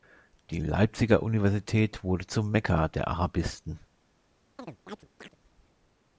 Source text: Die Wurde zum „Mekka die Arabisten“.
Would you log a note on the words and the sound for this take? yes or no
yes